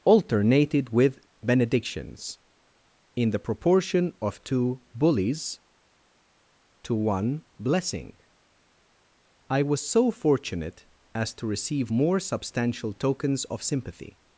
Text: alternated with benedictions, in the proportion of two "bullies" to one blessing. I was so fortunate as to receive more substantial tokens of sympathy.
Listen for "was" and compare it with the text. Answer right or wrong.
right